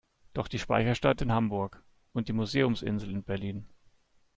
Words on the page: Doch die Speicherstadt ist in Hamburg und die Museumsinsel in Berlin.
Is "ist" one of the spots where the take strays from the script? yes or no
yes